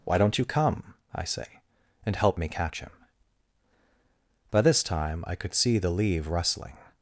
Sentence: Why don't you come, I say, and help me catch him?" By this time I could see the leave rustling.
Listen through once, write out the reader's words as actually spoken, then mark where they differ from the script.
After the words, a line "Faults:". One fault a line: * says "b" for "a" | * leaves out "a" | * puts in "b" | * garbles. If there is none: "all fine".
Why don't you come, I say, and help me catch him?" By this time I could see the leave rustling.
Faults:
all fine